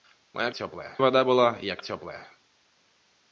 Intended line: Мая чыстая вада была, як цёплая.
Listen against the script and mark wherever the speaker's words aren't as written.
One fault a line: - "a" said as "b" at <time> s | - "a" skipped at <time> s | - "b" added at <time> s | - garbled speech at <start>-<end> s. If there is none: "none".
- "чыстая" said as "цёплая" at 0.5 s